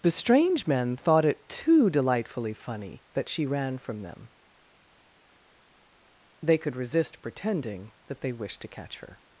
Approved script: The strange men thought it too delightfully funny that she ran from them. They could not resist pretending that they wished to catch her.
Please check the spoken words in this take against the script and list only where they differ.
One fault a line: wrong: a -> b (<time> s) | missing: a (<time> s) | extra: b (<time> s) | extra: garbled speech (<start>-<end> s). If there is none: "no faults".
missing: not (6.7 s)